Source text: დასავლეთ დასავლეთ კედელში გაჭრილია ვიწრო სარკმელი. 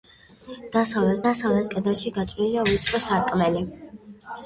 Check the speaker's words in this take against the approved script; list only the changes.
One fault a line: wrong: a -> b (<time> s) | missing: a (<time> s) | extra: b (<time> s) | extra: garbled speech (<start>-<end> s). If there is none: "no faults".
no faults